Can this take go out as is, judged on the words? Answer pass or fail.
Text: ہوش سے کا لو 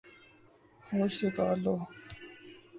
pass